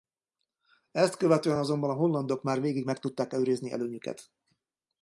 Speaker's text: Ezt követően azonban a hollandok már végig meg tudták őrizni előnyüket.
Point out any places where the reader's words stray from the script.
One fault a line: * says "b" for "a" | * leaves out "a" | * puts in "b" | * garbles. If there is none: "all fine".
all fine